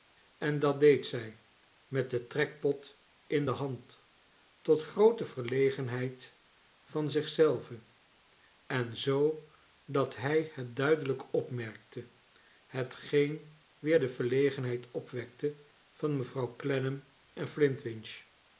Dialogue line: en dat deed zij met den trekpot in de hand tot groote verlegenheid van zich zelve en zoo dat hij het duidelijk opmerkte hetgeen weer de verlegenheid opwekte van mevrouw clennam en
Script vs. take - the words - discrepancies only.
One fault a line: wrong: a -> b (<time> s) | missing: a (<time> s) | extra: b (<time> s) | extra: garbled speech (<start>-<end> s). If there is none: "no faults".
no faults